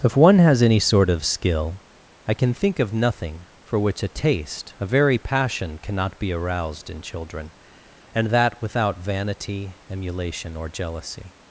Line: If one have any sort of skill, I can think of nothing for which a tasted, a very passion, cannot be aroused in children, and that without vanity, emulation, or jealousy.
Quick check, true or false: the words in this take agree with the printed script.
false